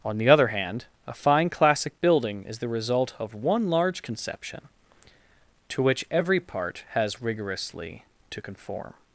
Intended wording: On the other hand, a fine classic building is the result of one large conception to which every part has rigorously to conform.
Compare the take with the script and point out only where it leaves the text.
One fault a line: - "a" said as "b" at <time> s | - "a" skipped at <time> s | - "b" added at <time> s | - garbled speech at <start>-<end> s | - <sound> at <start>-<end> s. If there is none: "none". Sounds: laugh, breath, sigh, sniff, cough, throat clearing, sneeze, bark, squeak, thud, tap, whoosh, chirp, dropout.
none